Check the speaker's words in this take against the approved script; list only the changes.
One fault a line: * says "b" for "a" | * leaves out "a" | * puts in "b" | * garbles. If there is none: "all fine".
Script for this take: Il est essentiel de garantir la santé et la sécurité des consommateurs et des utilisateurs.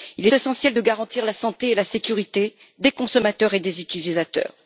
* leaves out "est"